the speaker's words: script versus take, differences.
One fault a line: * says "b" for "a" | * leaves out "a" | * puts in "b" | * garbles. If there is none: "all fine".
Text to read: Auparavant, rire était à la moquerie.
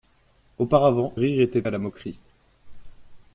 all fine